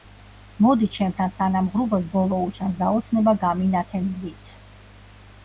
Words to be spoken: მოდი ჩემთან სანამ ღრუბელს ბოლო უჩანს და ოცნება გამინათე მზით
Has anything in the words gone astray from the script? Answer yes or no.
no